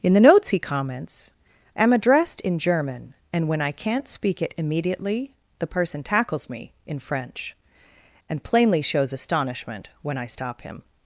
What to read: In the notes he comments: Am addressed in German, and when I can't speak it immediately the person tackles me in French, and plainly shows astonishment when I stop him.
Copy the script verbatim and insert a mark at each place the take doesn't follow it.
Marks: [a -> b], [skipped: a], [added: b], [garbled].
In the notes he comments: Am addressed in German, and when I can't speak it immediately the person tackles me in French, and plainly shows astonishment when I stop him.